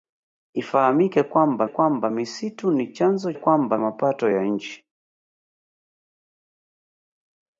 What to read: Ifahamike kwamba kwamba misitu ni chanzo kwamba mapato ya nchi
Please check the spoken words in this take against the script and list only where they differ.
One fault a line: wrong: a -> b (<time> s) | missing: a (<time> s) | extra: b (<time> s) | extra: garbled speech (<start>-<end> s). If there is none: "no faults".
no faults